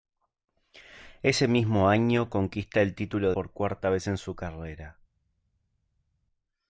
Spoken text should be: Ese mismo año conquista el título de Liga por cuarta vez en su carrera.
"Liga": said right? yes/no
no